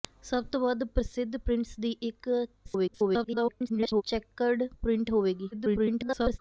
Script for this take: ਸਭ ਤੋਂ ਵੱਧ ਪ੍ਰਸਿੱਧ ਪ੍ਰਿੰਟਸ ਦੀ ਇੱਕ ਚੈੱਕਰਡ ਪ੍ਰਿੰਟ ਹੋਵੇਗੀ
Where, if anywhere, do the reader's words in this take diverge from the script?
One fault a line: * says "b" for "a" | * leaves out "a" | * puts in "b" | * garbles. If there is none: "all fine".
* garbles
* garbles